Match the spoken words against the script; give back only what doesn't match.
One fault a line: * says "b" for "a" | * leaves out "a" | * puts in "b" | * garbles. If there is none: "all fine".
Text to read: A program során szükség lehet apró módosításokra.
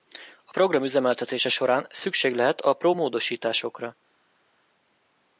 * puts in "üzemeltetése"